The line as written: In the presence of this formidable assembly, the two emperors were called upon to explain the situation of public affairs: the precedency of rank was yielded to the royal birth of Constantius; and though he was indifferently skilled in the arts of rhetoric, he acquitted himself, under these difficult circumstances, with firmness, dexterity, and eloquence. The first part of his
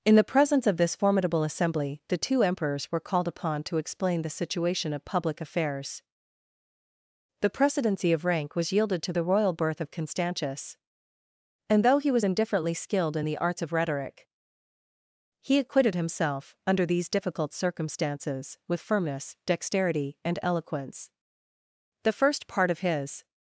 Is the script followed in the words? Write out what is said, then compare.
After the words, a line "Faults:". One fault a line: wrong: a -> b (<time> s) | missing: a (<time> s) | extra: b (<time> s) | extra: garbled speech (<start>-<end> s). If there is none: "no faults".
In the presence of this formidable assembly, the two emperors were called upon to explain the situation of public affairs: the precedency of rank was yielded to the royal birth of Constantius; and though he was indifferently skilled in the arts of rhetoric, he acquitted himself, under these difficult circumstances, with firmness, dexterity, and eloquence. The first part of his
Faults:
no faults